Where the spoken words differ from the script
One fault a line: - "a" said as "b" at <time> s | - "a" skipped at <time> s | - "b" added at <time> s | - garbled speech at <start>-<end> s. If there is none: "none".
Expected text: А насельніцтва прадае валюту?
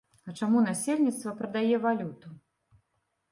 - "чаму" added at 0.4 s